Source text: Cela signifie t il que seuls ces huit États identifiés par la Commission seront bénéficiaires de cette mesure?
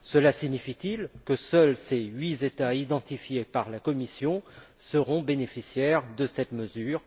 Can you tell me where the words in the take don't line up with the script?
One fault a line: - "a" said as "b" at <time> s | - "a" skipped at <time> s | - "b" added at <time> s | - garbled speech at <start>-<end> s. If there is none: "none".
none